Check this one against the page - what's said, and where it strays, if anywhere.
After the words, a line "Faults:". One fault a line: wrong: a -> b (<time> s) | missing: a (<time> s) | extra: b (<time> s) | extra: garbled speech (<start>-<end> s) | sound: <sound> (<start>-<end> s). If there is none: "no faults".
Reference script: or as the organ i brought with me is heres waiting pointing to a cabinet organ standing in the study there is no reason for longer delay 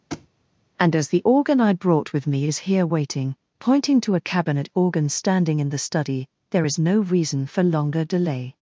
and as the organ i brought with me is here waiting pointing to a cabinet organ standing in the study there is no reason for longer delay
Faults:
sound: thud (0.1-0.3 s)
wrong: or -> and (0.8 s)
wrong: heres -> here (2.7 s)